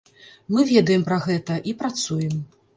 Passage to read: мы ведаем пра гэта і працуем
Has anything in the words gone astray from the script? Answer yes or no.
no